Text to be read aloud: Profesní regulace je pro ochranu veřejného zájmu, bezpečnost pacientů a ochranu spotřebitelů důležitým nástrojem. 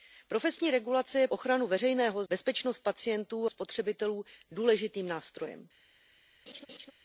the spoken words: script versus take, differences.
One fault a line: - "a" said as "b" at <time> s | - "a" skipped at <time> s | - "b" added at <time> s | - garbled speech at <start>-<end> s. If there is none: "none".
- "pro" skipped at 1.3 s
- "zájmu" skipped at 2.2 s
- "a ochranu" skipped at 3.5 s